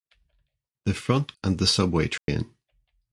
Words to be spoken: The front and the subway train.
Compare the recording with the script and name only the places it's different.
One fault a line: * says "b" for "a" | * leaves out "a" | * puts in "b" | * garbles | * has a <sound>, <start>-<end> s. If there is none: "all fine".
* has a dropout, 2.2-2.3 s